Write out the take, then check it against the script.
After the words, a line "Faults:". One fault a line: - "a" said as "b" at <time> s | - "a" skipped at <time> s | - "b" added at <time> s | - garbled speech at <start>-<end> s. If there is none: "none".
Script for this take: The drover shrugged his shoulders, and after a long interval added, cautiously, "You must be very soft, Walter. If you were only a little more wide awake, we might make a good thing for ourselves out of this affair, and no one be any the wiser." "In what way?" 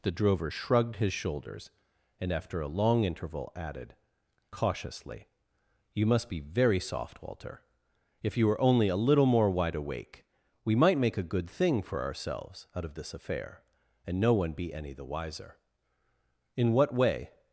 The drover shrugged his shoulders, and after a long interval added, cautiously, "You must be very soft, Walter. If you were only a little more wide awake, we might make a good thing for ourselves out of this affair, and no one be any the wiser." "In what way?"
Faults:
none